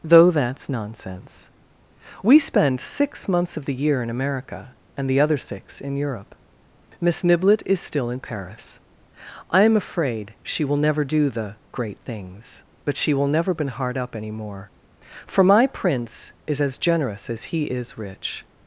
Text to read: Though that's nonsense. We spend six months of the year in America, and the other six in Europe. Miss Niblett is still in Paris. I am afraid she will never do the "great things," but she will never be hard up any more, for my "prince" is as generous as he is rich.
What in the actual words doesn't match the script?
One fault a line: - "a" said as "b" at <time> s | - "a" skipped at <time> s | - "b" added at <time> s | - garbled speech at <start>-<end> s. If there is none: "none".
- "be" said as "been" at 13.5 s